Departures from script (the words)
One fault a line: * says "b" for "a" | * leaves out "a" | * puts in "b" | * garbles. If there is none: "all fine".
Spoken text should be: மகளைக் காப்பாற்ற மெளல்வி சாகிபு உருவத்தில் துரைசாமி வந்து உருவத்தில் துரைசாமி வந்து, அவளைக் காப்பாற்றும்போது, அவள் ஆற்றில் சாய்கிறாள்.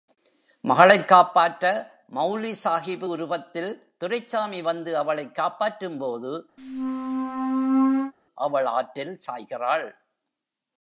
* leaves out "உருவத்தில் துரைசாமி வந்து"